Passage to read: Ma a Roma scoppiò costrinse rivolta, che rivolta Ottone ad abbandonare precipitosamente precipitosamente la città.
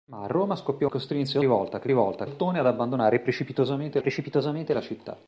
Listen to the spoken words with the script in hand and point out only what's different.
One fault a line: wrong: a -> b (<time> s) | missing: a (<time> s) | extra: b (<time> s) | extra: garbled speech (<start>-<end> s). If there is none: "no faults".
no faults